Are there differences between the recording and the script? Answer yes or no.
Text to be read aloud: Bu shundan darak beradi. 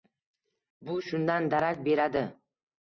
no